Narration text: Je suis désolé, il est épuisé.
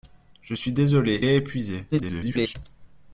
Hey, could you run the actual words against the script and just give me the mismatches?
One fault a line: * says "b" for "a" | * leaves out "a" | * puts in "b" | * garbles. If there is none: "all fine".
* leaves out "il"
* garbles